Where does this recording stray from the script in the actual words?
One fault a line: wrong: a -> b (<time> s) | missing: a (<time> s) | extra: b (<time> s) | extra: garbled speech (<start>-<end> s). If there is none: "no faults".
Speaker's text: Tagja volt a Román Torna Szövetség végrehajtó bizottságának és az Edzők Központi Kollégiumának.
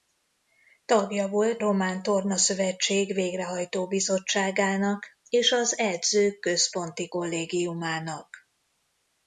missing: a (1.6 s)